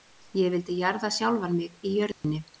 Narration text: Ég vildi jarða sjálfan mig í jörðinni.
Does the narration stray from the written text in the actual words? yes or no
no